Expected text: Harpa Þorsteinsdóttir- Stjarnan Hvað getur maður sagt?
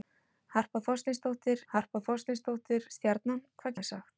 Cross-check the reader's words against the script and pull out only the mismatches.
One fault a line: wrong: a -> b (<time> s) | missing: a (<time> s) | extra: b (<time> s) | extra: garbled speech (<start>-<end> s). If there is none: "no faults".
extra: harpa Þorsteinsdóttir (1.7 s)
missing: getur (3.8 s)